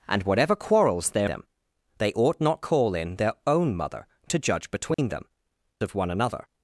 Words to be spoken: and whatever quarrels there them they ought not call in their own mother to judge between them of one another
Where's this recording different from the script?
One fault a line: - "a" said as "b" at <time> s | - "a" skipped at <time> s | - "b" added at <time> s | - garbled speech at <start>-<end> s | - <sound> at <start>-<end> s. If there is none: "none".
- dropout at 4.9-5.0 s